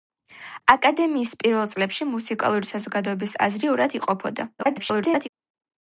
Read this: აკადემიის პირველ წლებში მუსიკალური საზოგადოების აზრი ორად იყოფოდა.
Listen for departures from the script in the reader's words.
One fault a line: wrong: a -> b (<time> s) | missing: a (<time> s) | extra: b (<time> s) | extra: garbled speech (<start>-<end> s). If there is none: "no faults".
extra: garbled speech (4.6-5.3 s)